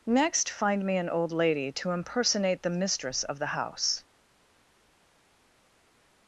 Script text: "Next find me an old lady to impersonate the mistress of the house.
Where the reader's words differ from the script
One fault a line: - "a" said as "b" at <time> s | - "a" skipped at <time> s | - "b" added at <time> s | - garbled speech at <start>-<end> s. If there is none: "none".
none